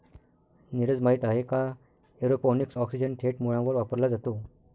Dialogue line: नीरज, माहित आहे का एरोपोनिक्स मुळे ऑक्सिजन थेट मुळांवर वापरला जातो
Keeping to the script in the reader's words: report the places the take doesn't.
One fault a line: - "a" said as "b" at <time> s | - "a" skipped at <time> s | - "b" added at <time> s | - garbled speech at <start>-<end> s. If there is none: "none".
- "मुळे" skipped at 2.8 s